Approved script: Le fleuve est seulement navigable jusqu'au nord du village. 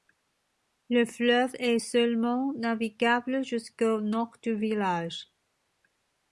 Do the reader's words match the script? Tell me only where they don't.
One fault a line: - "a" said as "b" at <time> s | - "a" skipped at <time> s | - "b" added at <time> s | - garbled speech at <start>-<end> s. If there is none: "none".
none